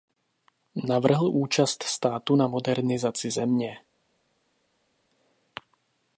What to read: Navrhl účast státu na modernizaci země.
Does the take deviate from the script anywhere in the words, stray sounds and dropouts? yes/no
no